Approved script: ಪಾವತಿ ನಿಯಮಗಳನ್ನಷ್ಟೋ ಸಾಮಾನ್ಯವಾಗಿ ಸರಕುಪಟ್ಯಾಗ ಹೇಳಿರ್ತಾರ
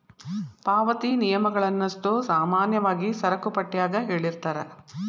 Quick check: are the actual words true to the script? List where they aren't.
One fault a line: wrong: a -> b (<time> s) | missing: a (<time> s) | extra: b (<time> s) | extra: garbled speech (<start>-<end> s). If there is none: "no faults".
no faults